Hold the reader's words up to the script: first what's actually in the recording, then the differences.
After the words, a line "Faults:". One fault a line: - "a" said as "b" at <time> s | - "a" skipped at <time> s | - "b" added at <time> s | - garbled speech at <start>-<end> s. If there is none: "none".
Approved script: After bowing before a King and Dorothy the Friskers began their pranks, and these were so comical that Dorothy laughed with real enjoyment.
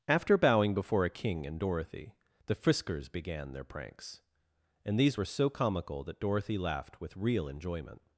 After bowing before a King and Dorothy the Friskers began their pranks, and these were so comical that Dorothy laughed with real enjoyment.
Faults:
none